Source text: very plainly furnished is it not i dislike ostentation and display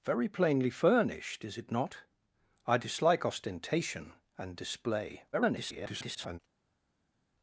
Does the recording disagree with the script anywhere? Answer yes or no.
yes